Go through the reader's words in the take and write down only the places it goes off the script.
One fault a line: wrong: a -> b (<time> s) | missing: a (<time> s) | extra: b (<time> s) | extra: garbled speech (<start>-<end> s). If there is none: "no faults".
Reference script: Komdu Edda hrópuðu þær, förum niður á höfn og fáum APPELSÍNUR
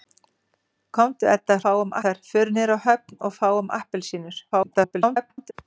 wrong: hrópuðu -> fáum (1.6 s)
extra: garbled speech (4.5-5.5 s)